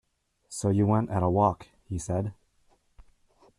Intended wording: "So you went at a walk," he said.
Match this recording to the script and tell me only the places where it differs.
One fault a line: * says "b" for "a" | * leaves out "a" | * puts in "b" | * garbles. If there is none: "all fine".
all fine